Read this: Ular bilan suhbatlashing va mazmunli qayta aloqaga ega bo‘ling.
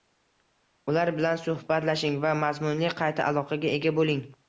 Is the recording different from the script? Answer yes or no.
no